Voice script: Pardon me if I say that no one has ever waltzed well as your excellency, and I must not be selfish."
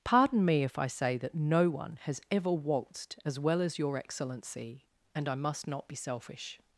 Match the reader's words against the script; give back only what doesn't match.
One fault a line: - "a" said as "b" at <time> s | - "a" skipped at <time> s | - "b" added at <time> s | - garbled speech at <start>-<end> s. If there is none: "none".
- "as" added at 3.2 s